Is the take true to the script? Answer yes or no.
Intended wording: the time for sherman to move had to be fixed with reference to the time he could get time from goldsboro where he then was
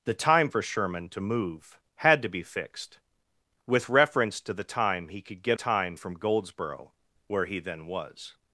yes